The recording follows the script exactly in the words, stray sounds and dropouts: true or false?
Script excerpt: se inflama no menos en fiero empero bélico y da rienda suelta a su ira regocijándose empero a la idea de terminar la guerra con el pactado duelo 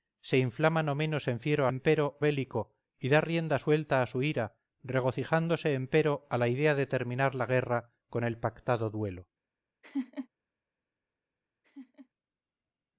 false